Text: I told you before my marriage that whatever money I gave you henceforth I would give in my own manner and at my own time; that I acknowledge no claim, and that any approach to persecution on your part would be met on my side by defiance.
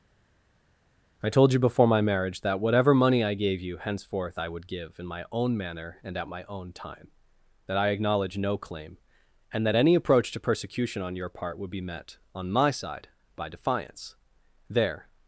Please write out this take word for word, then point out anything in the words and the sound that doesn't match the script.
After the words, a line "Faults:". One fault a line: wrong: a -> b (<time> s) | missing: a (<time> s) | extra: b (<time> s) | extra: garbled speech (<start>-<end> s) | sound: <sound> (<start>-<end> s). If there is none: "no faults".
I told you before my marriage that whatever money I gave you henceforth I would give in my own manner and at my own time; that I acknowledge no claim, and that any approach to persecution on your part would be met on my side by defiance. There
Faults:
extra: There (14.7 s)